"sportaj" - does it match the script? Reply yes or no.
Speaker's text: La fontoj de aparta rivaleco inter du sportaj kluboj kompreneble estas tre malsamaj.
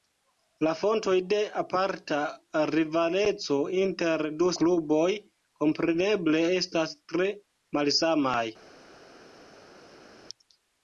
no